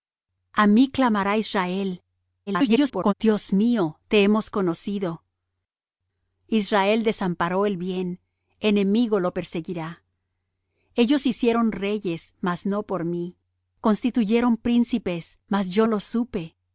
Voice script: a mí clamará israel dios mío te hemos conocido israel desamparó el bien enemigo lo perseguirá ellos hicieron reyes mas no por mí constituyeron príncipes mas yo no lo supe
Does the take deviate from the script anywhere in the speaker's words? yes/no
yes